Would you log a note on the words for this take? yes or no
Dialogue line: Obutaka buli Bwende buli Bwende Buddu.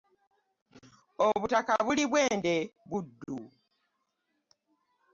yes